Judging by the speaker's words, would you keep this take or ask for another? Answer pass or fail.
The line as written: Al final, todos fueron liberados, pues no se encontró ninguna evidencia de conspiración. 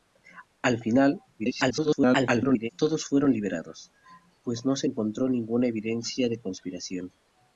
fail